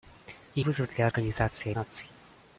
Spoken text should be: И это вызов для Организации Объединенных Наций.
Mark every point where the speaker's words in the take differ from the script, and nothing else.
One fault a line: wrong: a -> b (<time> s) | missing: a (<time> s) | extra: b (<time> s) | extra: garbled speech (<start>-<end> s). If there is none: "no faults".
missing: это (0.7 s)
missing: Объединенных (1.7 s)